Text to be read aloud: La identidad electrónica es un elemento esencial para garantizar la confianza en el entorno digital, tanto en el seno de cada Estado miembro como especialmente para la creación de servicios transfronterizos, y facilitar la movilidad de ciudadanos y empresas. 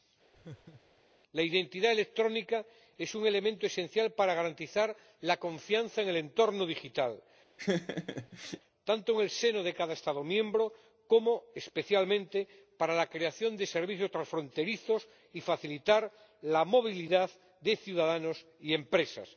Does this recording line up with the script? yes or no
yes